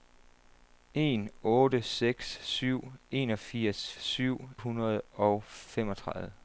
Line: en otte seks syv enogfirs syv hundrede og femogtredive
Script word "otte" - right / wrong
right